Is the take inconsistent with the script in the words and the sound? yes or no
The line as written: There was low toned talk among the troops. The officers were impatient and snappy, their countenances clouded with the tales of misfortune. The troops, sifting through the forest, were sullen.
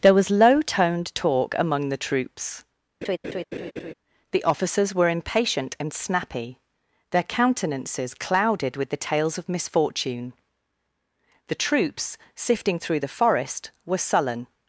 yes